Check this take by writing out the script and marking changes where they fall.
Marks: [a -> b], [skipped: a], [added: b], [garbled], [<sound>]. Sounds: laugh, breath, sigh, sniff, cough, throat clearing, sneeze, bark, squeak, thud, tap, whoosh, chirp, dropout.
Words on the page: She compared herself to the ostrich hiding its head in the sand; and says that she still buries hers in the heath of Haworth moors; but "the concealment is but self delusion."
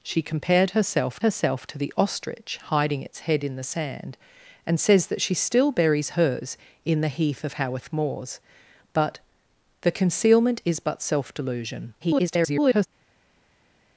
She compared herself [added: herself] to the ostrich hiding its head in the sand; and says that she still buries hers in the heath of Haworth moors; but "the concealment is but self delusion." [garbled]